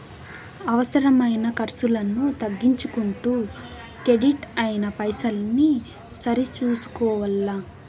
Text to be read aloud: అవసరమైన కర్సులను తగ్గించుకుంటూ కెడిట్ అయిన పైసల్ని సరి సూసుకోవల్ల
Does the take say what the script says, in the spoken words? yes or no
yes